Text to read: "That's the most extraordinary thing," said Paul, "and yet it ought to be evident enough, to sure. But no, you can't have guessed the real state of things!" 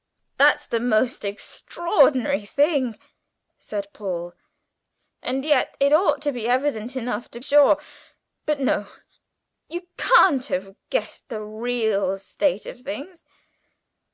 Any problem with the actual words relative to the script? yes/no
no